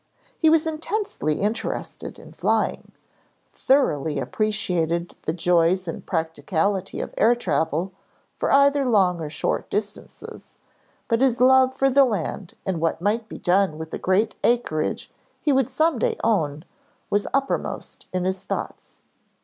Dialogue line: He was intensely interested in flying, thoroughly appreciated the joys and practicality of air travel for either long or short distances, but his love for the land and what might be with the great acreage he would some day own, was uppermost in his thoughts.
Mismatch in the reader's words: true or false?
true